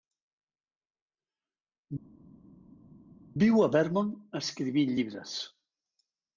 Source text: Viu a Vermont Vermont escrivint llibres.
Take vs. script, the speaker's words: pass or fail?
fail